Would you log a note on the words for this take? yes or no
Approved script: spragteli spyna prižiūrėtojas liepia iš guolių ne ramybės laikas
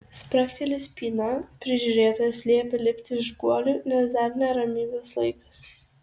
yes